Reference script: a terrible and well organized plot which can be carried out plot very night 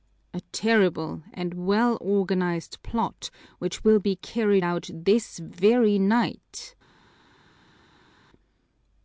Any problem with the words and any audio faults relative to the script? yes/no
yes